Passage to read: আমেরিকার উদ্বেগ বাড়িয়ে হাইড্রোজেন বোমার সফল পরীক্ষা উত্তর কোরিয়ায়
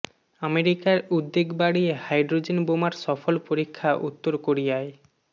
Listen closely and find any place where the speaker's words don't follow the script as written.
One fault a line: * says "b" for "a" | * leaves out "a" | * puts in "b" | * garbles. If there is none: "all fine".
all fine